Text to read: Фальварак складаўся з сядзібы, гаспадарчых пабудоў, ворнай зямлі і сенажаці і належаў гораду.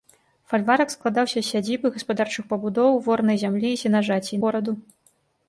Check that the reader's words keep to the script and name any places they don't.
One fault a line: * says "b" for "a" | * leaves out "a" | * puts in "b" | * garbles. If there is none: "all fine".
* leaves out "належаў"